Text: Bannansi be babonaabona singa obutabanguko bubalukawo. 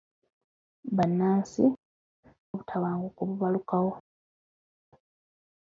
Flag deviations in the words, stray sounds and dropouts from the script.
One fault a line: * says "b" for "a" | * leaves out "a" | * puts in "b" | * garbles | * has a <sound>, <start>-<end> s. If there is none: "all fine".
* leaves out "be babonaabona singa"